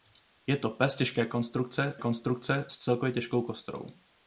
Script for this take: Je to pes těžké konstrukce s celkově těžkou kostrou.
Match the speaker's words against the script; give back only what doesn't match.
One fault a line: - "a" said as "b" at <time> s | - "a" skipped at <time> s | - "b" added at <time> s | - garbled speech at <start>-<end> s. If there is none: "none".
- "konstrukce" added at 2.0 s